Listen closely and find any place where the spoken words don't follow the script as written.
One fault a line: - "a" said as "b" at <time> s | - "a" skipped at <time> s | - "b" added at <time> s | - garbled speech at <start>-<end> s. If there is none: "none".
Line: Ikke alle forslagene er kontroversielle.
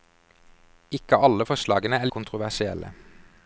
none